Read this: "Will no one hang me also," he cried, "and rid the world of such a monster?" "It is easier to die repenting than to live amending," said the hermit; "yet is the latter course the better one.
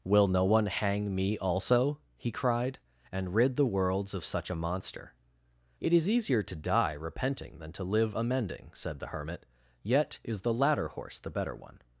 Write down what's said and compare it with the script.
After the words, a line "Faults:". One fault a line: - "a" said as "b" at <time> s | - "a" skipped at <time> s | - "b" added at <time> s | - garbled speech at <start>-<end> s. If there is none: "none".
"Will no one hang me also," he cried, "and rid the worlds of such a monster?" "It is easier to die repenting than to live amending," said the hermit; "yet is the latter horse the better one.
Faults:
- "world" said as "worlds" at 3.6 s
- "course" said as "horse" at 10.9 s